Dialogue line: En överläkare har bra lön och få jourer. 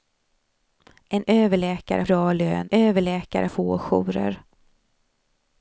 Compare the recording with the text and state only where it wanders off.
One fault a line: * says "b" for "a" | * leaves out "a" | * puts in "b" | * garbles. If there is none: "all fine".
* leaves out "har"
* says "överläkare" for "och"